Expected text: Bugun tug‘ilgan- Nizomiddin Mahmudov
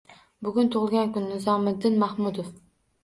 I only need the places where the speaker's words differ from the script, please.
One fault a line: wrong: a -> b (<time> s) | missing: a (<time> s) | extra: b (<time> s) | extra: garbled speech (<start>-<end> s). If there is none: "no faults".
extra: kun (1.2 s)